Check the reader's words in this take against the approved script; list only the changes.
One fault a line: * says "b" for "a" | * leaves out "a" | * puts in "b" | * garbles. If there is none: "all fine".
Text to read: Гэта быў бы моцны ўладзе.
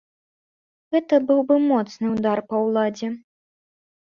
* puts in "ўдар па"